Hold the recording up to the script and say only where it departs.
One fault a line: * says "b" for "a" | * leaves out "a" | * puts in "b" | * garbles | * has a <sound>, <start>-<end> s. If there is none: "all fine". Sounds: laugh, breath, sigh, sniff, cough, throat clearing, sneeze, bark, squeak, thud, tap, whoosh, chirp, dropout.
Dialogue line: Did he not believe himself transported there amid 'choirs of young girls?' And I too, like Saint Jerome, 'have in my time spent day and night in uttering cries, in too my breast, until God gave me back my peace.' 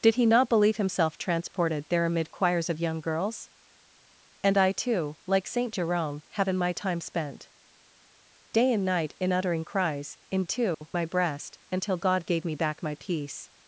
* has a dropout, 10.7-10.8 s